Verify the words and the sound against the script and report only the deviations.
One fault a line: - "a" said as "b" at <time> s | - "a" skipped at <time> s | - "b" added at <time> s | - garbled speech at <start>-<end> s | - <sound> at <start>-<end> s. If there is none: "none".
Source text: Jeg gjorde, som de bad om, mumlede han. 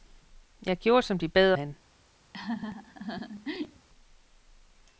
- "om mumlede" skipped at 1.5 s
- laugh at 2.3-3.9 s